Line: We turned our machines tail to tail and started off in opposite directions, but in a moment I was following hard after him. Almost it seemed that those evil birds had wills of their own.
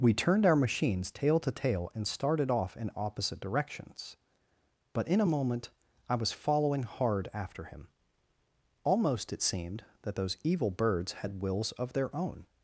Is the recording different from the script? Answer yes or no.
no